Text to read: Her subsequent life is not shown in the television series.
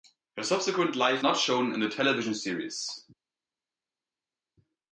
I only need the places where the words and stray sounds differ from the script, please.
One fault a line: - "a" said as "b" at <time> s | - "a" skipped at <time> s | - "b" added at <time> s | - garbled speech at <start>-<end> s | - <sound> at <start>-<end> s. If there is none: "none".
- "is" skipped at 1.2 s